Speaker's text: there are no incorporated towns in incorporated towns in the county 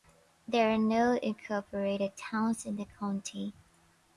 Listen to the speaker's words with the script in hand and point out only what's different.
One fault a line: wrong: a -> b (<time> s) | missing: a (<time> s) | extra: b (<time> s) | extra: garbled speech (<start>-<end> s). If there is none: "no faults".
missing: incorporated towns in (2.8 s)